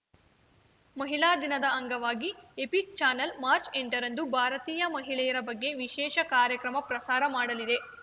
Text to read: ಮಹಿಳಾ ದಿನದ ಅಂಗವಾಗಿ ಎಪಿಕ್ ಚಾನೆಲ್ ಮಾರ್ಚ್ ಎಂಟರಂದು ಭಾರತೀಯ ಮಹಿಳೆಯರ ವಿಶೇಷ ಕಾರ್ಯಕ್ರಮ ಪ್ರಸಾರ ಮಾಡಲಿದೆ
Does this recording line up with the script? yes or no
no